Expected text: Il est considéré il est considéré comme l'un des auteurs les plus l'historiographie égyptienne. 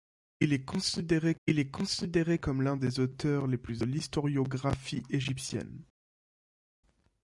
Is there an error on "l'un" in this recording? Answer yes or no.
no